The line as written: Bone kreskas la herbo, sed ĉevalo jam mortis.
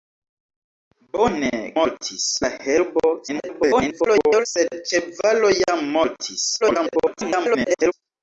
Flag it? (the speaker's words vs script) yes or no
yes